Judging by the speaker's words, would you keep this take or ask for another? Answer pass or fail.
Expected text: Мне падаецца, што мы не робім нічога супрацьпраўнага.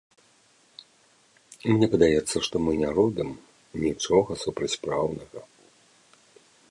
pass